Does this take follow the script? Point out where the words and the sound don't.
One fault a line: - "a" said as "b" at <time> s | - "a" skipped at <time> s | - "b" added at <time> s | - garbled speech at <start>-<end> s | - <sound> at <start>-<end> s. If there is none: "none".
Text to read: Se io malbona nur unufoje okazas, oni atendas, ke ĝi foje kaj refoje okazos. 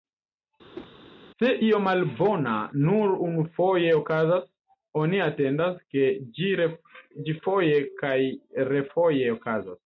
- whoosh at 0.7-0.9 s